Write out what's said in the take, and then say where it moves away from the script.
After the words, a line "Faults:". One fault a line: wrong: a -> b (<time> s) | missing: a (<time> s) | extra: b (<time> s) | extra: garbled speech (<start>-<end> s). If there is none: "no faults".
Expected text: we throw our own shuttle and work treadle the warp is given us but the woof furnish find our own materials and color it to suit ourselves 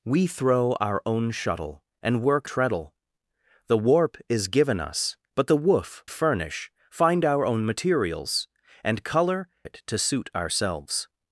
we throw our own shuttle and work treadle the warp is given us but the woof furnish find our own materials and color it to suit ourselves
Faults:
no faults